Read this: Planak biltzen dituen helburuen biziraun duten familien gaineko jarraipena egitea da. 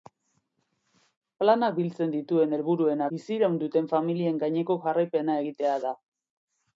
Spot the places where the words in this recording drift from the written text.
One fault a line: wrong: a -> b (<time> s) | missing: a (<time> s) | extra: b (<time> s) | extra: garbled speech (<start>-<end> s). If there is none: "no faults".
no faults